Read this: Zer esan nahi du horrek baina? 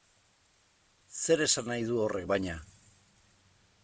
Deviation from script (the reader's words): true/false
false